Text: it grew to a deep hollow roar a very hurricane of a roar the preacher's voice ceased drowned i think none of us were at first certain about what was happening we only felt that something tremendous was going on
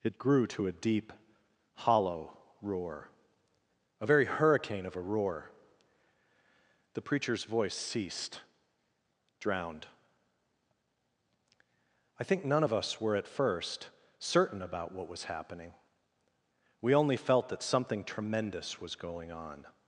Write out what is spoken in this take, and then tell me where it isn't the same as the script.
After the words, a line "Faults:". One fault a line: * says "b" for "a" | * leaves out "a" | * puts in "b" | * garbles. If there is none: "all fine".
it grew to a deep hollow roar a very hurricane of a roar the preacher's voice ceased drowned i think none of us were at first certain about what was happening we only felt that something tremendous was going on
Faults:
all fine